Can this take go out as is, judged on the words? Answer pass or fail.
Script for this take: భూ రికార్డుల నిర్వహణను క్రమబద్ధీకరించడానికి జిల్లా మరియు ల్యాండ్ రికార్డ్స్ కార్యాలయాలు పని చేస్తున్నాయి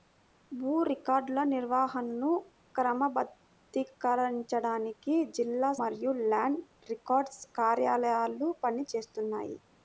pass